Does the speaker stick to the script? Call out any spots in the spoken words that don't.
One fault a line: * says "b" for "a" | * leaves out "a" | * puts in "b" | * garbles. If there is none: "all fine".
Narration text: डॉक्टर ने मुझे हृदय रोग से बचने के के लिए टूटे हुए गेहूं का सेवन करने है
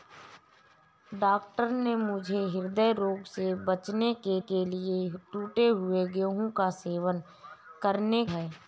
all fine